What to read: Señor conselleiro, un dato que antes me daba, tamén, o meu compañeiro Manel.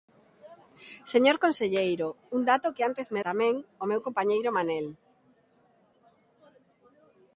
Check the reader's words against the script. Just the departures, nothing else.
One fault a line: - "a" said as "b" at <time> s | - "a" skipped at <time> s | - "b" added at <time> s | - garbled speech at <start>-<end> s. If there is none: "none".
- "daba" skipped at 3.2 s